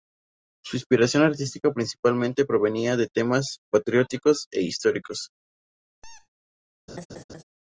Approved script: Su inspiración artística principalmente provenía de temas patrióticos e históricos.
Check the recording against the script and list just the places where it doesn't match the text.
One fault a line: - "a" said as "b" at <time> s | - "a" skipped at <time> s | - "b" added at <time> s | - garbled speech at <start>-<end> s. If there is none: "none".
none